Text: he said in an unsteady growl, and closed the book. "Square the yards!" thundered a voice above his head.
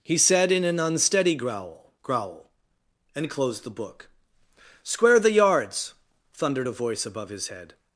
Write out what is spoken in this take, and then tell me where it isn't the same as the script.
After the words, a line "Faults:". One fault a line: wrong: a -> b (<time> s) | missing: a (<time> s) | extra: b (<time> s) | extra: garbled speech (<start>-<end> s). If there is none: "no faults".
he said in an unsteady growl growl, and closed the book. "Square the yards!" thundered a voice above his head.
Faults:
extra: growl (2.0 s)